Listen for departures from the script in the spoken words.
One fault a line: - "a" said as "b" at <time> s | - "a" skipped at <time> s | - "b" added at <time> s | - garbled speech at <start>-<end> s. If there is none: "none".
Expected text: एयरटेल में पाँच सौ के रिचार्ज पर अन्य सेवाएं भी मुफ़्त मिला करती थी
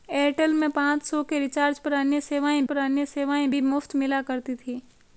- "पर अन्य सेवाएं" added at 2.6 s